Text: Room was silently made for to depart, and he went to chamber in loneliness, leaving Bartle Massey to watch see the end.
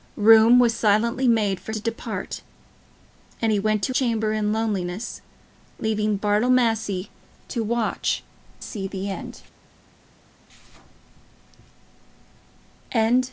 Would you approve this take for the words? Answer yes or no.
yes